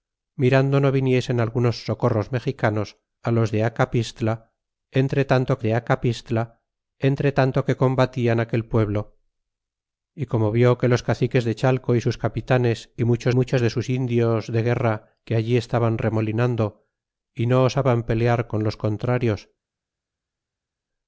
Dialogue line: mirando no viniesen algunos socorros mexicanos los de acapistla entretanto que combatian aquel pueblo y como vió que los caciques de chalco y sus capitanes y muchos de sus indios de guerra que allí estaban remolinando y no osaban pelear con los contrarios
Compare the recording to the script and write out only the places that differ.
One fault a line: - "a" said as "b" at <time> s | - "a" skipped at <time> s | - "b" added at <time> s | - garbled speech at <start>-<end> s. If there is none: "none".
- "de acapistla entretanto" added at 5.6 s
- "muchos" added at 13.3 s